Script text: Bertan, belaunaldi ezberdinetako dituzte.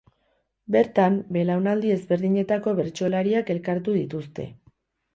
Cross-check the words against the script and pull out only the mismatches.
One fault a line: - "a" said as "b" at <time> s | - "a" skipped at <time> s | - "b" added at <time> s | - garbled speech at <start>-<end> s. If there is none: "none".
- "bertsolariak elkartu" added at 2.8 s